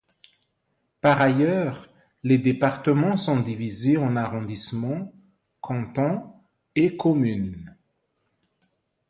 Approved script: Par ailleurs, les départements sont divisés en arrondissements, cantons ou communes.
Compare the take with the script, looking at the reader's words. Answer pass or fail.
fail